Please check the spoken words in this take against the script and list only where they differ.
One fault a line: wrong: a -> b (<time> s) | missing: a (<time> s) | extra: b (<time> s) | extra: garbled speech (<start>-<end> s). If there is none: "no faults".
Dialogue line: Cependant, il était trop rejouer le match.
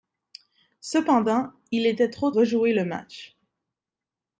no faults